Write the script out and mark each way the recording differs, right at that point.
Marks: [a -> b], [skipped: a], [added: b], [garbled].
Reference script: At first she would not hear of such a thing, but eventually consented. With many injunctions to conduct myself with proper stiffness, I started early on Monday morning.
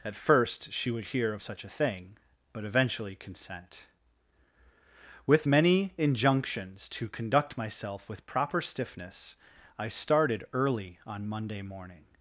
At first she would [skipped: not] hear of such a thing, but eventually [consented. -> consent] With many injunctions to conduct myself with proper stiffness, I started early on Monday morning.